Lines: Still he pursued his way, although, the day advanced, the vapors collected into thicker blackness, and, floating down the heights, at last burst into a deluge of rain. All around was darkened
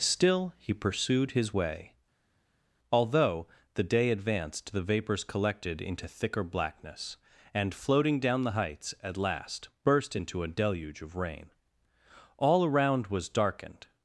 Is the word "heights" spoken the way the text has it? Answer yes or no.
yes